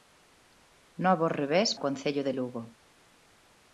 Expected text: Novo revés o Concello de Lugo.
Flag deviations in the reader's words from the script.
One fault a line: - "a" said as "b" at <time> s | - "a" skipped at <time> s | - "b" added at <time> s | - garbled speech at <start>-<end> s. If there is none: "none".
none